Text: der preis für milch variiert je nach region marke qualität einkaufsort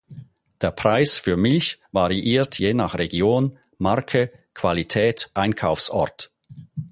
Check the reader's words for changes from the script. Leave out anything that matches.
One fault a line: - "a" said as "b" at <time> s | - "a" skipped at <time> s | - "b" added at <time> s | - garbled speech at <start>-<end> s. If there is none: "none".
none